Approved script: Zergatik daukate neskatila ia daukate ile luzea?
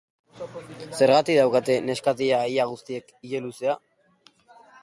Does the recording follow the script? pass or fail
fail